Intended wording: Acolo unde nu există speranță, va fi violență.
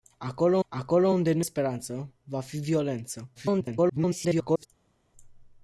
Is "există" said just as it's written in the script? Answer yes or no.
no